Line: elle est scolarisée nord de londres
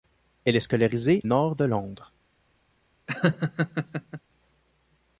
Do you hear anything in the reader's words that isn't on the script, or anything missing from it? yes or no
no